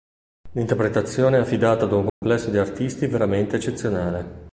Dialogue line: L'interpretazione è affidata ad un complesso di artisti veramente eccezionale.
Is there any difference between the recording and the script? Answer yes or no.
no